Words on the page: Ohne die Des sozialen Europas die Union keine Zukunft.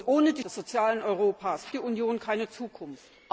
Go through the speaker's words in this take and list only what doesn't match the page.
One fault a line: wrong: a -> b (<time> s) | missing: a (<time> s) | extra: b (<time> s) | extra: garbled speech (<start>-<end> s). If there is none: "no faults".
no faults